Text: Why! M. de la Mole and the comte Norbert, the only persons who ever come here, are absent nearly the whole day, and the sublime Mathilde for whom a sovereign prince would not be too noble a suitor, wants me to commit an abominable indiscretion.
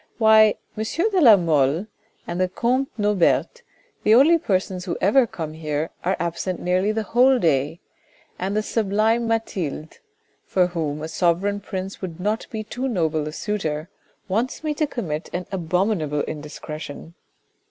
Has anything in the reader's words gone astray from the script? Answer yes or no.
no